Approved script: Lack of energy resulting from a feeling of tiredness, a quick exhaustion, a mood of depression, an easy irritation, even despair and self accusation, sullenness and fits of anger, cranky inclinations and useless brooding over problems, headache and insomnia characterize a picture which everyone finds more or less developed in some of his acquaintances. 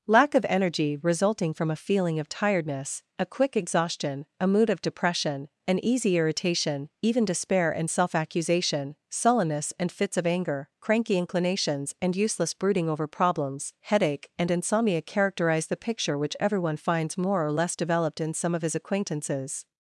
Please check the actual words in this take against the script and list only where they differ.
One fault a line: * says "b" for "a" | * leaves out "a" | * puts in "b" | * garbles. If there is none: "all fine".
* says "the" for "a"